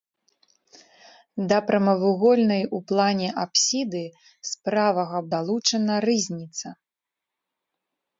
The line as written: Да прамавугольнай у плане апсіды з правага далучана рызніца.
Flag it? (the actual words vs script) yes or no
no